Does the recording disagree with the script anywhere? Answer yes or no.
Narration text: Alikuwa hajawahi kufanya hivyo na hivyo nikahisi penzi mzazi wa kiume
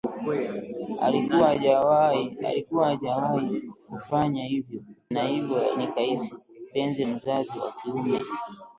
no